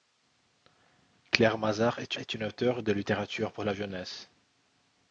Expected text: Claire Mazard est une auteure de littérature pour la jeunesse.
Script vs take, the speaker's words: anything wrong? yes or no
yes